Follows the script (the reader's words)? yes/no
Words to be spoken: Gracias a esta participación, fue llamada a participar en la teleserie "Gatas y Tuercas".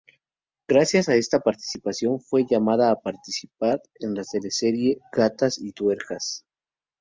yes